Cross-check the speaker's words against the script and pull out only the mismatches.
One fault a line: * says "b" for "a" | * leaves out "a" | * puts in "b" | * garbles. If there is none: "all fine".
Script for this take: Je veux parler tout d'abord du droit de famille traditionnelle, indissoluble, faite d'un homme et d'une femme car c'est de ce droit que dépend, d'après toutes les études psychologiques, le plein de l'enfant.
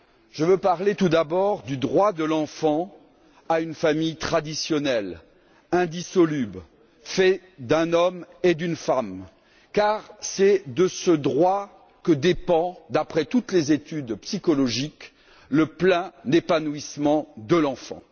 * puts in "l'enfant à une"
* puts in "épanouissement"